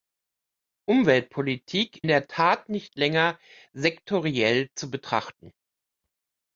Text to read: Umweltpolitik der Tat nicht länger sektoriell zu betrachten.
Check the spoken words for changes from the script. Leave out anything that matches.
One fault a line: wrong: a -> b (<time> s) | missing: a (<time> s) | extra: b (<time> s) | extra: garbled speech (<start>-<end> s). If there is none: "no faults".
no faults